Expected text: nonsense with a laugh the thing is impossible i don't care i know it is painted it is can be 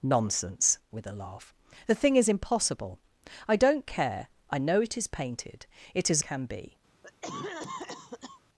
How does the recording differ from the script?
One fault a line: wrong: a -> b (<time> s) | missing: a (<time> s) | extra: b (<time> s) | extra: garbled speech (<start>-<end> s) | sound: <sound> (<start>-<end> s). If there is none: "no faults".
sound: cough (7.0-8.4 s)